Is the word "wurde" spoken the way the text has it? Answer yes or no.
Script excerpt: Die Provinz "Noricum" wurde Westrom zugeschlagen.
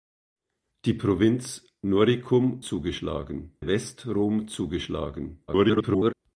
no